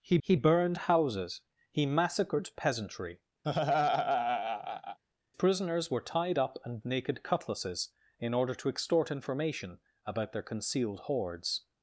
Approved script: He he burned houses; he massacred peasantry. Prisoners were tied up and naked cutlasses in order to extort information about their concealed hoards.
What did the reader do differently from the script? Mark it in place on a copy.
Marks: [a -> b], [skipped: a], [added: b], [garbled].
He he burned houses; he massacred peasantry. Prisoners were tied up and naked cutlasses in order to extort information about their concealed hoards.